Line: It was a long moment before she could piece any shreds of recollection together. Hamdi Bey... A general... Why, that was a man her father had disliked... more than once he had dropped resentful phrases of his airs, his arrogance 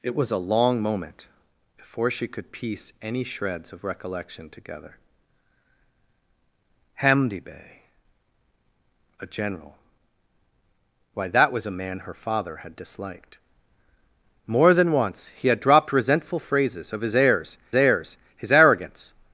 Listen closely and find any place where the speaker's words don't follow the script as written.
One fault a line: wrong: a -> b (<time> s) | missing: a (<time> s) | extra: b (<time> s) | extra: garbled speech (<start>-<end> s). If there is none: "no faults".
extra: airs (17.7 s)